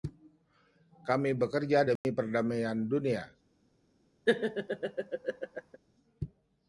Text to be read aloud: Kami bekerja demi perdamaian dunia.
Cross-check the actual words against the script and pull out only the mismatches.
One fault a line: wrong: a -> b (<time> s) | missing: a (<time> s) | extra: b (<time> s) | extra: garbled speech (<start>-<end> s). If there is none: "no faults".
no faults